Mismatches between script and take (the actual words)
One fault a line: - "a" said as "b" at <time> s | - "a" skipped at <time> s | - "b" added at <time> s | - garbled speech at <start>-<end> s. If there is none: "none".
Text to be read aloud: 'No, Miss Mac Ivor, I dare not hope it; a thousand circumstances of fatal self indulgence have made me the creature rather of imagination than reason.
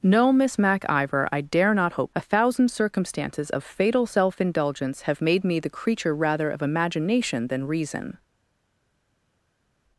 - "it" skipped at 2.1 s